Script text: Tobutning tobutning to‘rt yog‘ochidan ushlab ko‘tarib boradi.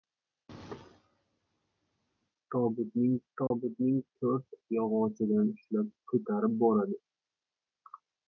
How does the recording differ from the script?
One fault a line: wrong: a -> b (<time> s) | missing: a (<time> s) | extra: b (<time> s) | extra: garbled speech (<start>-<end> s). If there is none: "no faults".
no faults